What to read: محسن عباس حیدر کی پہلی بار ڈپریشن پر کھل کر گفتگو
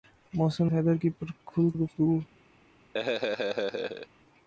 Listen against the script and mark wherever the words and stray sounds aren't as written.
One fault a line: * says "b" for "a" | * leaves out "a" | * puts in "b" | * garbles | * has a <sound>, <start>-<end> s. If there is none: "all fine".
* leaves out "عباس"
* leaves out "پہلی بار ڈپریشن"
* leaves out "کر"
* has a laugh, 2.9-4.1 s